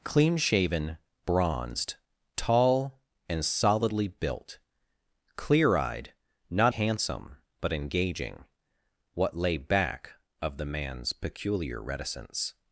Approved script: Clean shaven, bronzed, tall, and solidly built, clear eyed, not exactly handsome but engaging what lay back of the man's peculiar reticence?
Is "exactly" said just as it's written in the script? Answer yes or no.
no